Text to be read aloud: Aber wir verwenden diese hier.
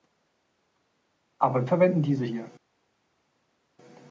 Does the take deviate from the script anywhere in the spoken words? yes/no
yes